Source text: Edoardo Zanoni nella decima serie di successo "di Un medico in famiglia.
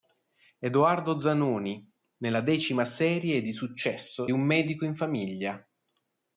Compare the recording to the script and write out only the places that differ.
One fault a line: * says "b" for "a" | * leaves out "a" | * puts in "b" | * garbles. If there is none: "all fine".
* leaves out "di"